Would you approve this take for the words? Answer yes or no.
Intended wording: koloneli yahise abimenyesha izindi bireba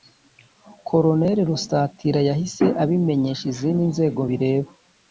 no